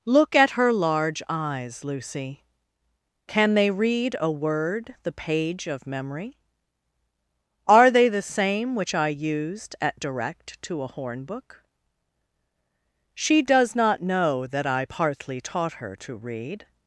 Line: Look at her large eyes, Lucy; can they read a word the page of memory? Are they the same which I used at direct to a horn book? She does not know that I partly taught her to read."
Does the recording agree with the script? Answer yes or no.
yes